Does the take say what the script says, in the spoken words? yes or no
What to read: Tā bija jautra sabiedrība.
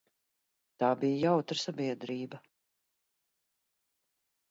yes